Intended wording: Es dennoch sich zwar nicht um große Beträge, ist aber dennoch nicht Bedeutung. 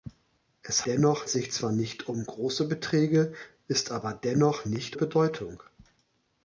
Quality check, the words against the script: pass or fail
pass